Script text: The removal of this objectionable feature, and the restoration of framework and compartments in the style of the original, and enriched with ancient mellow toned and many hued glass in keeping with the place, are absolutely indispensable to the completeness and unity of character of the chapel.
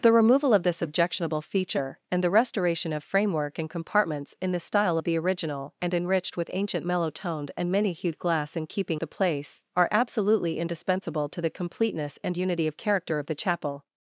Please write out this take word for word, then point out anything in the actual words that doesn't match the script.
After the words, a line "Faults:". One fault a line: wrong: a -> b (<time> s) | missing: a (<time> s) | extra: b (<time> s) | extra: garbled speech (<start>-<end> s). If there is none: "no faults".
The removal of this objectionable feature, and the restoration of framework and compartments in the style of the original, and enriched with ancient mellow toned and many hued glass in keeping the place, are absolutely indispensable to the completeness and unity of character of the chapel.
Faults:
missing: with (9.0 s)